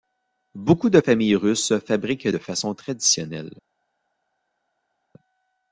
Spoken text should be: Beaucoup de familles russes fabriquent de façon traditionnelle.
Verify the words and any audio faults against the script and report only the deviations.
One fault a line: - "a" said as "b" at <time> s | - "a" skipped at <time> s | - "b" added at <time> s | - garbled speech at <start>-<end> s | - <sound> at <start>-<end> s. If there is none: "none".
none